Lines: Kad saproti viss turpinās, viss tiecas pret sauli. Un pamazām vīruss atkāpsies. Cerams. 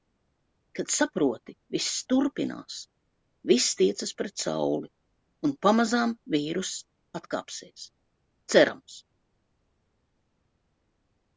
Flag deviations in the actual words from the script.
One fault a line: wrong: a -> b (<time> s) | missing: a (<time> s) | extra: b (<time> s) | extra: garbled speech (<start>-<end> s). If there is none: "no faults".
no faults